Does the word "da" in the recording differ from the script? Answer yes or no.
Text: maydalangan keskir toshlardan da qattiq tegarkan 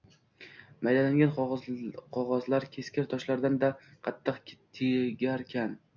no